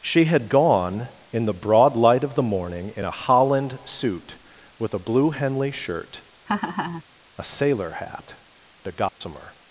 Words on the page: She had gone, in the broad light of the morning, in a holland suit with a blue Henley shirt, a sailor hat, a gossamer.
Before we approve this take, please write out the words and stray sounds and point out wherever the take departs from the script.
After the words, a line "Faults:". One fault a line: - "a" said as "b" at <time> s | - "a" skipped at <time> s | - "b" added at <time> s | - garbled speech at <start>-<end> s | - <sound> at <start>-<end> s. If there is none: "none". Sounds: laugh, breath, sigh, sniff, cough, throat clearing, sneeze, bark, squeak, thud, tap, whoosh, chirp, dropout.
She had gone, in the broad light of the morning, in a holland suit with a blue Henley shirt, a sailor hat, a gossamer.
Faults:
- laugh at 6.5-7.0 s
- dropout at 9.1-9.2 s